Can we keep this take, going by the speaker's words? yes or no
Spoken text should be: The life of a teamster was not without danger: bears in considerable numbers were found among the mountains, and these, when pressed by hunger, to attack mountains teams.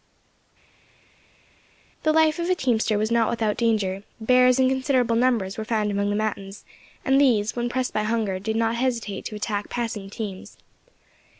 no